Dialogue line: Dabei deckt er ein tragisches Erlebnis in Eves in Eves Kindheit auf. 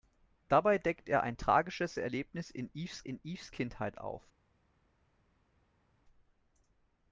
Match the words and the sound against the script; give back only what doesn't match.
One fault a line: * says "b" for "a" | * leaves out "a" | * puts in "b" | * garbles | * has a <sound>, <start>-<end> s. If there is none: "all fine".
all fine